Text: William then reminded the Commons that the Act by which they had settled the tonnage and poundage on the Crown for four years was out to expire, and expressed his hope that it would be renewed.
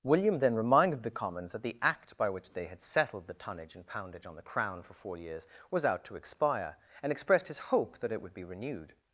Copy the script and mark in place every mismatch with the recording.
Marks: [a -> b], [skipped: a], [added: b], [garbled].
William then reminded the Commons that the Act by which they had settled the tonnage and poundage on the Crown for four years was out to expire, and expressed his hope that it would be renewed.